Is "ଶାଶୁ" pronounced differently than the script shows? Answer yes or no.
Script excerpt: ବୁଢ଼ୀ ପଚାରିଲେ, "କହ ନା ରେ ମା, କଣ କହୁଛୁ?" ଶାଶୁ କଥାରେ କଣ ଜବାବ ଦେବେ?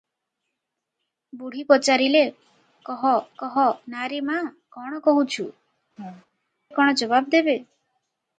yes